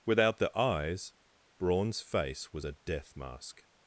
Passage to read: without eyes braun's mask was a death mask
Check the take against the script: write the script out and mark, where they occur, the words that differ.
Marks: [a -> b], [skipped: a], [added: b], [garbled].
without [added: the] eyes braun's [mask -> face] was a death mask